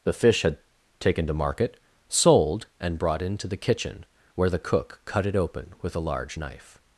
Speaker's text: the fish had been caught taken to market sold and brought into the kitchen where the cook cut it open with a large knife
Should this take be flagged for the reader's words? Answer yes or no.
yes